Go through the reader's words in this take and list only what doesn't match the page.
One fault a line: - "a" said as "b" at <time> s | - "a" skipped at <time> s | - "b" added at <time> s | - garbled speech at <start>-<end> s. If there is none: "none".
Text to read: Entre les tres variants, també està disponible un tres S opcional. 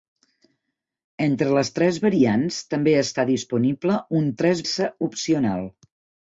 none